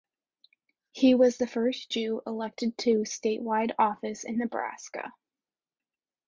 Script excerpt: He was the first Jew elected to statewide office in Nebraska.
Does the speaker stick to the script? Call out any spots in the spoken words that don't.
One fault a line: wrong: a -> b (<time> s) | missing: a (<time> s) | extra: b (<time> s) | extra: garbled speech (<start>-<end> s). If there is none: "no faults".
no faults